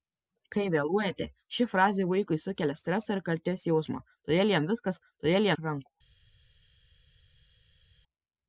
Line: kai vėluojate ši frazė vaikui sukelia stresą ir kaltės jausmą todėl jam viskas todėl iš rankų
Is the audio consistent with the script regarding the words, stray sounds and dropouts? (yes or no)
yes